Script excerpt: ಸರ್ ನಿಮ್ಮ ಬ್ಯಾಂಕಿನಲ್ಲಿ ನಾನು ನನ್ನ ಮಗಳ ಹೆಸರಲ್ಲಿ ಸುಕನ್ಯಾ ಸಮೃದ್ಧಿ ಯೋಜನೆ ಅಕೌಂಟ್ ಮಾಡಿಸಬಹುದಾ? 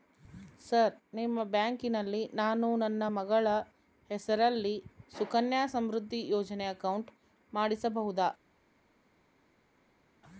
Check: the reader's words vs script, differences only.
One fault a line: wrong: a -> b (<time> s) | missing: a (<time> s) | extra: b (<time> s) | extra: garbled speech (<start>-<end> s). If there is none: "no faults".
no faults